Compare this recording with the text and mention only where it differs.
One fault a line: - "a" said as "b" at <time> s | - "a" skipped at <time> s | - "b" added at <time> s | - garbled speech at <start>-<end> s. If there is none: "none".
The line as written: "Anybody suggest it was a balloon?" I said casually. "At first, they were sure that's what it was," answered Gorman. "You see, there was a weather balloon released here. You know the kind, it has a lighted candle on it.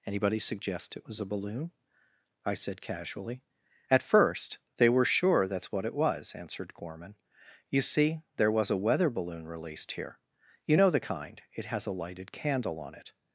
none